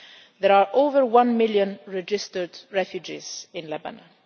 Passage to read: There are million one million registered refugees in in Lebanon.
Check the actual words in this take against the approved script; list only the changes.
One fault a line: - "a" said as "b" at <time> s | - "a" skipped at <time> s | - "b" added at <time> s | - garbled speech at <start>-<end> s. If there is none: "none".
- "million" said as "over" at 0.7 s
- "in" skipped at 3.7 s